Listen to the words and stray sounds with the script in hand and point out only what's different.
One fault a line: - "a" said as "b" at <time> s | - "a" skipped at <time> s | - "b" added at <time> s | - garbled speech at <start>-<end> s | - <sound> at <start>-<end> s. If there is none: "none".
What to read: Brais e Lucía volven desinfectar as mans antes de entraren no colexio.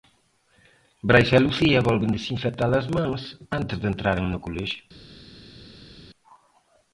none